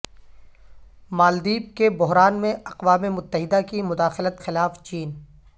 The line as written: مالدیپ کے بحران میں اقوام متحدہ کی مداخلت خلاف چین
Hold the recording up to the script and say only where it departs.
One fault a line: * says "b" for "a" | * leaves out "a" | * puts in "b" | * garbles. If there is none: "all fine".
all fine